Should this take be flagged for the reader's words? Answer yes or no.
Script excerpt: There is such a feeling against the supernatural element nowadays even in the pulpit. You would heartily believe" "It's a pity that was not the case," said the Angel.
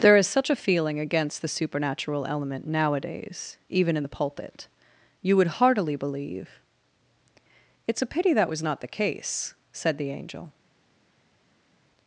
no